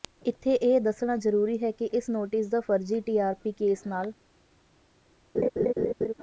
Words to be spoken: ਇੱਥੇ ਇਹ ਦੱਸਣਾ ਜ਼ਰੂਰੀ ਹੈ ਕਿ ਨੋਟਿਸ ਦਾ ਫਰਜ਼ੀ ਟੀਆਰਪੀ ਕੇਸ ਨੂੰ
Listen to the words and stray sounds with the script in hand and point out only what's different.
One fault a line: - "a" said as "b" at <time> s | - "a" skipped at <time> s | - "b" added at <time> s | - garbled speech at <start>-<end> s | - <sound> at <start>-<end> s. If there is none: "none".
- "ਇਸ" added at 1.9 s
- "ਨੂੰ" said as "ਨਾਲ" at 3.9 s
- laugh at 5.3-6.1 s